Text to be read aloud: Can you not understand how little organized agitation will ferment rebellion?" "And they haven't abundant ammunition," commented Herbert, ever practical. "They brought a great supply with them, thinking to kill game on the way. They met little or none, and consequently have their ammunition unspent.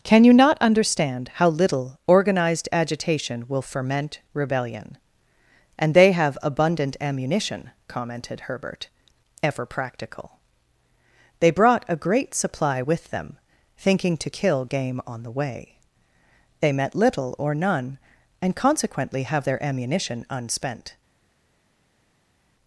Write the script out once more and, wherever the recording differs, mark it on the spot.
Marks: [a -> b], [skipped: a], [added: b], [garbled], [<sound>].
Can you not understand how little organized agitation will ferment rebellion?" "And they [haven't -> have] abundant ammunition," commented Herbert, ever practical. "They brought a great supply with them, thinking to kill game on the way. They met little or none, and consequently have their ammunition unspent.